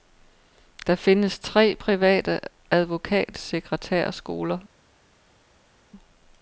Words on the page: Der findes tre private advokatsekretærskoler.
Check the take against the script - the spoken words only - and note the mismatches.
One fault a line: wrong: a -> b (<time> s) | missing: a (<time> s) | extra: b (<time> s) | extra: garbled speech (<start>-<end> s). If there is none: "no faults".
no faults